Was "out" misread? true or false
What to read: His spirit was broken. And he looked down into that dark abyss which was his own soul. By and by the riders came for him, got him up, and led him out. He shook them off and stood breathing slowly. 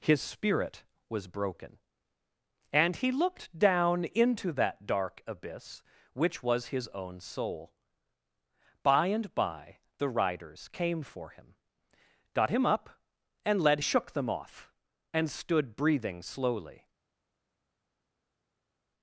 true